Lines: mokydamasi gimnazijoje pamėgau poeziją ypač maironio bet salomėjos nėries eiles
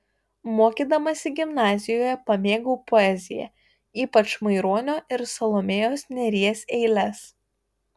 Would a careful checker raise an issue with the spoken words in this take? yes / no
yes